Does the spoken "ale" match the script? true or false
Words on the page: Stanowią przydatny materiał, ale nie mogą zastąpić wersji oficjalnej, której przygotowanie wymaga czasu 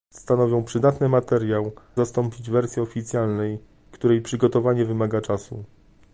false